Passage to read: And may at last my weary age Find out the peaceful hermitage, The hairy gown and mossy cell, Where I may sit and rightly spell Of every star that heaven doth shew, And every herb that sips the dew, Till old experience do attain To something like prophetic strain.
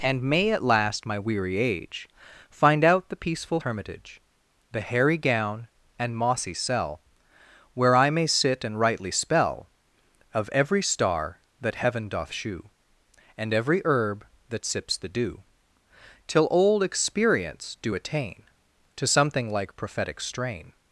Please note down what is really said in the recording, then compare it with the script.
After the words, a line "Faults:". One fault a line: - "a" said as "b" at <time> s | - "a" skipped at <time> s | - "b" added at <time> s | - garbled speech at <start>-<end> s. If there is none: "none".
And may at last my weary age Find out the peaceful hermitage, The hairy gown and mossy cell, Where I may sit and rightly spell Of every star that heaven doth shew, And every herb that sips the dew, Till old experience do attain To something like prophetic strain.
Faults:
none